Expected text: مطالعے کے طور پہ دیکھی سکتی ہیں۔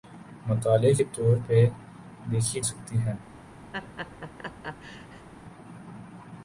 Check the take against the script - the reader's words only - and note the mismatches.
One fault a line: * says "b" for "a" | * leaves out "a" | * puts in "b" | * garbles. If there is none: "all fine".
all fine